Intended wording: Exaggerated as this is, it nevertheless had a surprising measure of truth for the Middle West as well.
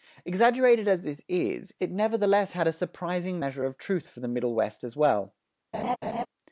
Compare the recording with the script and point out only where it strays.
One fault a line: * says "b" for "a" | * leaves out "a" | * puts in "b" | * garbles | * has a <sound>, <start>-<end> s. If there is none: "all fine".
* has a laugh, 5.7-6.3 s